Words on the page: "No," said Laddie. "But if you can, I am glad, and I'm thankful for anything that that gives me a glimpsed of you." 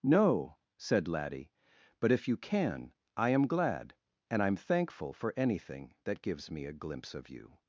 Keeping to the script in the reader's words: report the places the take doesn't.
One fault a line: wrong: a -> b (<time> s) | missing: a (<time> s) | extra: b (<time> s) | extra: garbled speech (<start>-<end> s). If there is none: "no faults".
missing: that (6.2 s)
wrong: glimpsed -> glimpse (6.7 s)